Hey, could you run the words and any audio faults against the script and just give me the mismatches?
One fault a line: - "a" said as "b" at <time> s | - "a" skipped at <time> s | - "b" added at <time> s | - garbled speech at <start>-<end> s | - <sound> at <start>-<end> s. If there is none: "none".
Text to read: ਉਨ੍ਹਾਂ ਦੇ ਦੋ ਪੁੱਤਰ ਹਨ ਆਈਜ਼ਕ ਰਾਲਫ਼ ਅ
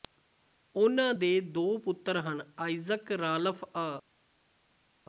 none